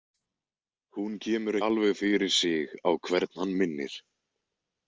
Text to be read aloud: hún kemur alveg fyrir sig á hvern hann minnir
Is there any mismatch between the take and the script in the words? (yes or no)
no